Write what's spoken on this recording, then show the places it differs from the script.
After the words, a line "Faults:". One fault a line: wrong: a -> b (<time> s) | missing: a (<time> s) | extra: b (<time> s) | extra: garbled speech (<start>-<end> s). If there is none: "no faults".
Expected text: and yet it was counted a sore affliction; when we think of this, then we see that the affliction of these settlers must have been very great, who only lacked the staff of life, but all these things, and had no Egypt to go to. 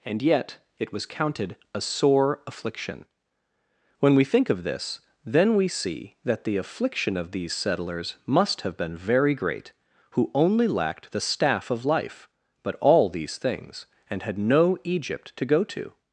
and yet it was counted a sore affliction; when we think of this, then we see that the affliction of these settlers must have been very great, who only lacked the staff of life, but all these things, and had no Egypt to go to.
Faults:
no faults